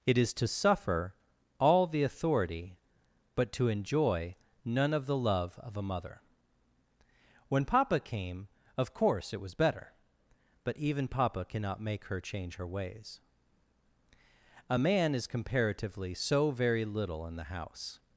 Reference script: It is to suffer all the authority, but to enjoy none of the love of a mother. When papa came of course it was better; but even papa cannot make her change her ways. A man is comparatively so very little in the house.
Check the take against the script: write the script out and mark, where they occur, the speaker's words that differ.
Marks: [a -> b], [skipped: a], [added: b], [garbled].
It is to suffer all the authority, but to enjoy none of the love of a mother. When papa came of course it was better; but even papa cannot make her change her ways. A man is comparatively so very little in the house.